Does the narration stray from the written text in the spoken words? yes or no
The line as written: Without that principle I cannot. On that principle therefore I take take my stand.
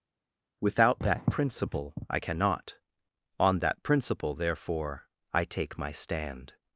yes